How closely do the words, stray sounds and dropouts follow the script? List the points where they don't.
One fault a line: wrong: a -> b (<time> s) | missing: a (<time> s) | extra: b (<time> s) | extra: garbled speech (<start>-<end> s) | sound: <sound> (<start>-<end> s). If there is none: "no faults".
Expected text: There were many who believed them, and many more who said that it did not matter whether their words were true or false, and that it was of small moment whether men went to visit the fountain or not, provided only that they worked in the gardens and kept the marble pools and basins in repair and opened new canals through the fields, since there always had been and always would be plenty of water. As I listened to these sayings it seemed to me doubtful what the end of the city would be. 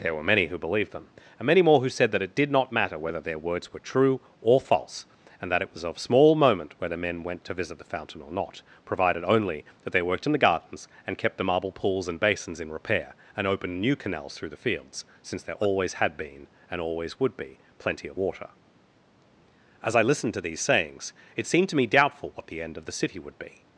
no faults